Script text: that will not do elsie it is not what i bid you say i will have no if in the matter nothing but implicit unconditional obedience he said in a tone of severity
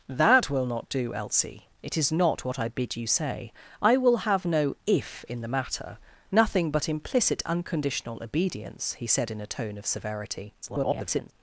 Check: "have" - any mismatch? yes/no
no